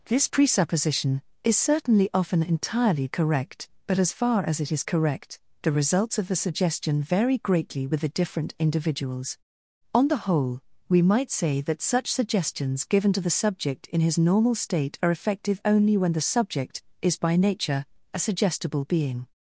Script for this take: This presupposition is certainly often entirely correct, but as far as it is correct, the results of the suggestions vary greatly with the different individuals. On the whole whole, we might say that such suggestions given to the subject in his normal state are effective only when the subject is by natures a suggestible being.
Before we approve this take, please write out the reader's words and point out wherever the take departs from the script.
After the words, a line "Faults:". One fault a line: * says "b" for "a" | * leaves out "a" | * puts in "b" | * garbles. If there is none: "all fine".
This presupposition is certainly often entirely correct, but as far as it is correct, the results of the suggestion vary greatly with the different individuals. On the whole, we might say that such suggestions given to the subject in his normal state are effective only when the subject is by nature a suggestible being.
Faults:
* says "suggestion" for "suggestions"
* leaves out "whole"
* says "nature" for "natures"